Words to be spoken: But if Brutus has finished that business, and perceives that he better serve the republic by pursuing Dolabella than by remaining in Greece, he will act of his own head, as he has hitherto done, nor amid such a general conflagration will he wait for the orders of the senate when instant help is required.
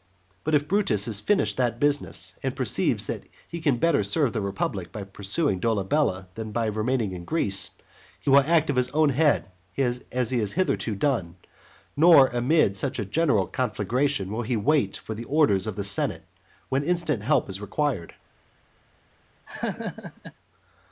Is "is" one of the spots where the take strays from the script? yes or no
no